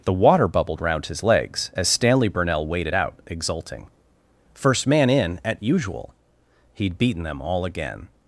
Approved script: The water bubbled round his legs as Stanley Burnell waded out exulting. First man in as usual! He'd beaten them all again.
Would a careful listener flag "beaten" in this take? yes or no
no